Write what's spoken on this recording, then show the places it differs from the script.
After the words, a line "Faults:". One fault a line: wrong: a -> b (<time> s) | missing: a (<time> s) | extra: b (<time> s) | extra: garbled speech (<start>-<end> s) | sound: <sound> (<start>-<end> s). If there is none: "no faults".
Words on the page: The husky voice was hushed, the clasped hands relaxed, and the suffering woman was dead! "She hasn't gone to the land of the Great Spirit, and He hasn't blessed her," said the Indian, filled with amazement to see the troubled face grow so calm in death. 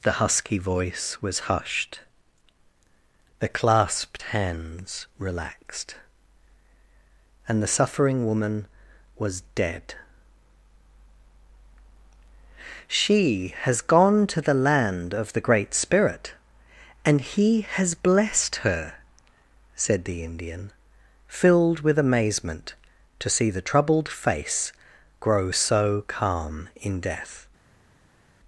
The husky voice was hushed, the clasped hands relaxed, and the suffering woman was dead! "She has gone to the land of the Great Spirit, and He has blessed her," said the Indian, filled with amazement to see the troubled face grow so calm in death.
Faults:
wrong: hasn't -> has (13.6 s)
wrong: hasn't -> has (17.7 s)